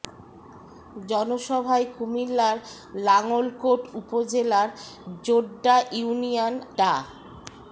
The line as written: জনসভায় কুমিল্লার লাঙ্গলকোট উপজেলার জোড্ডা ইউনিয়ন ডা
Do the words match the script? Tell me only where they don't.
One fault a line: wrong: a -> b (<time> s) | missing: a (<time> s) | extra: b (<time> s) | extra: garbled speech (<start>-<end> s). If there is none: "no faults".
no faults